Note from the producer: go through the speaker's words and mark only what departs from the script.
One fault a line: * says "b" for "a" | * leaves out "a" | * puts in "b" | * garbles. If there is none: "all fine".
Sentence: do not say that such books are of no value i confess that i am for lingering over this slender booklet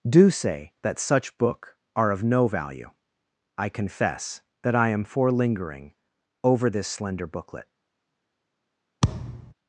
* leaves out "not"
* says "book" for "books"